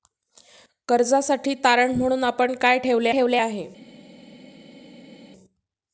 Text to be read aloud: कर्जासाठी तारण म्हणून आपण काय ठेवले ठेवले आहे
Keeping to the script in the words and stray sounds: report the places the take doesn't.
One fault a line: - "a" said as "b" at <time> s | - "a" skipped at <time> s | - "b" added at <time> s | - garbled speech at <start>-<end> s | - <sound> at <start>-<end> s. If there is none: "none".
none